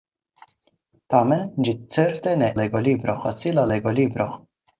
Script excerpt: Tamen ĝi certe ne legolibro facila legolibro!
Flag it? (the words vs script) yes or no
no